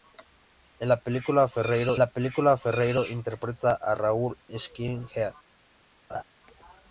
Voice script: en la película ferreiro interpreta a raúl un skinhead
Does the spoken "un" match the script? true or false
false